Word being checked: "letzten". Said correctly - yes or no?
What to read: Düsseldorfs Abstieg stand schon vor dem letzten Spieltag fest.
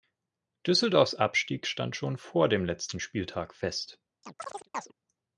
yes